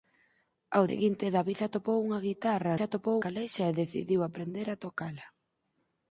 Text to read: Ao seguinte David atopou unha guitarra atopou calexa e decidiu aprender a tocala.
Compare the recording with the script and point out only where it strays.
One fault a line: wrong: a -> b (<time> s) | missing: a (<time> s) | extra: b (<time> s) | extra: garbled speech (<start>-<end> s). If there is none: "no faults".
no faults